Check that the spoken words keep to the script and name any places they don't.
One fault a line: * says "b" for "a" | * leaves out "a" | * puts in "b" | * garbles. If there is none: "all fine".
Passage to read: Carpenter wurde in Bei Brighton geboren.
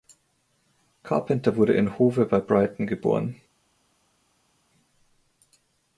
* puts in "Hove"